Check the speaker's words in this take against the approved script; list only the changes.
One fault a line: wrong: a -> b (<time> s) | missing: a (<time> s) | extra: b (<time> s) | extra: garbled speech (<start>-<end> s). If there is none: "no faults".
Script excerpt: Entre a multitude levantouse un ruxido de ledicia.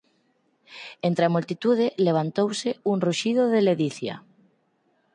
no faults